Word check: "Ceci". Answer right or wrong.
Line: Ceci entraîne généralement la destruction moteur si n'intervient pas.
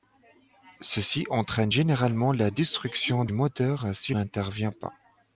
right